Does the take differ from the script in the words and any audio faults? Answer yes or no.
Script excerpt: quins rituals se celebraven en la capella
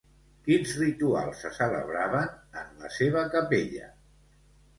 yes